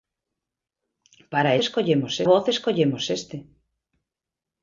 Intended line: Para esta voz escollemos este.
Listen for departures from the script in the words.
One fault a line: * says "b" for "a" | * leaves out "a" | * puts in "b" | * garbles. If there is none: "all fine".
* says "escollemos" for "esta"